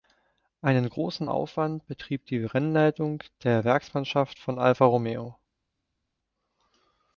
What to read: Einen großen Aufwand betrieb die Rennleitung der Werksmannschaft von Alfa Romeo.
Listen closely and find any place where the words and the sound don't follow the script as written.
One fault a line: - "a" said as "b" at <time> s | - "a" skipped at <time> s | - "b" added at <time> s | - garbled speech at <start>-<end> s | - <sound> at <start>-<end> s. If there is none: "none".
none